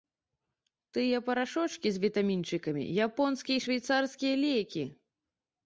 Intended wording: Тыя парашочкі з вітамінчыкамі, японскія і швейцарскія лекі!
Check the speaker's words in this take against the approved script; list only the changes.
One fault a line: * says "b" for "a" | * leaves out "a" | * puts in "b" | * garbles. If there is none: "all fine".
all fine